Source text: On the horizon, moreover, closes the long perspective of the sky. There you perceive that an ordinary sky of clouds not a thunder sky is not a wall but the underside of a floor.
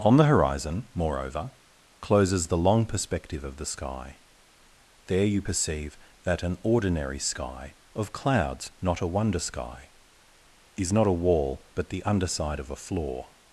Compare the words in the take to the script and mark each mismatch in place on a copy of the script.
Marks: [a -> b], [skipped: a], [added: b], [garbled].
On the horizon, moreover, closes the long perspective of the sky. There you perceive that an ordinary sky of clouds not a [thunder -> wonder] sky is not a wall but the underside of a floor.